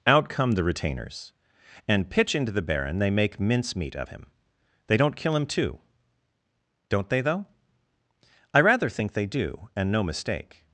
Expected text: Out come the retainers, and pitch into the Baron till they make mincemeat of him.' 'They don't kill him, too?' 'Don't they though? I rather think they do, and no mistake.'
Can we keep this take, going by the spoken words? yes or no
no